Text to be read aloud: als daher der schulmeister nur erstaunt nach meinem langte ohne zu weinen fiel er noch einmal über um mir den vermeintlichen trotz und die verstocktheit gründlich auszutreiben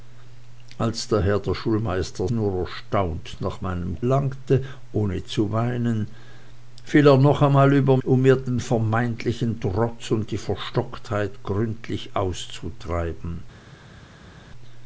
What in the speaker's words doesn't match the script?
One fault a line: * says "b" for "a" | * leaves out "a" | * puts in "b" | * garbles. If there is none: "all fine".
all fine